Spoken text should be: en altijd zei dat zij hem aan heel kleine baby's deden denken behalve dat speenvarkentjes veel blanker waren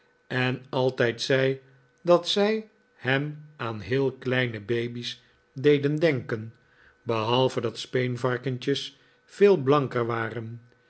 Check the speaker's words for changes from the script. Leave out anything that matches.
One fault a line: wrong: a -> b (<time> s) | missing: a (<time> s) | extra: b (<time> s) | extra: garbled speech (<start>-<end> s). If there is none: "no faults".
no faults